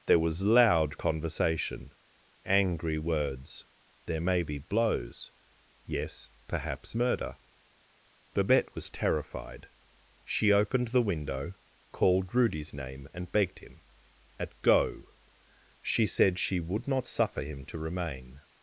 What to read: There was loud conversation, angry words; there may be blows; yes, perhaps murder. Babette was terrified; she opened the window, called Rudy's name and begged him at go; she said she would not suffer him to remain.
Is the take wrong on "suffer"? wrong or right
right